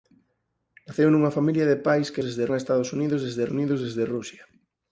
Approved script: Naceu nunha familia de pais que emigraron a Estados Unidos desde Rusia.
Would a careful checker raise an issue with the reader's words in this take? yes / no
yes